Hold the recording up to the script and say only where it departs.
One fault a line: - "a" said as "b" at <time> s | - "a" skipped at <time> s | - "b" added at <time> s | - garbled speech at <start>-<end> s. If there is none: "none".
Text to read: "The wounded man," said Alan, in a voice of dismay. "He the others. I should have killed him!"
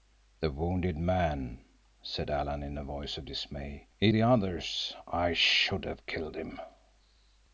none